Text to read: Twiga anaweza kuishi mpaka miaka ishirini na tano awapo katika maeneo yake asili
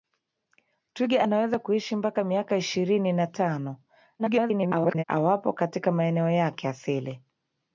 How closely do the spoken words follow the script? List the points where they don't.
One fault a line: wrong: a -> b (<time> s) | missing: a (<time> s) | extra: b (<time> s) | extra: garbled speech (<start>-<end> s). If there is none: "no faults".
extra: garbled speech (4.2-5.0 s)